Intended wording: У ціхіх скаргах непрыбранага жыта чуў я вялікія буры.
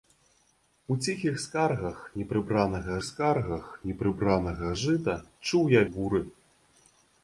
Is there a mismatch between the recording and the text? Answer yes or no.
yes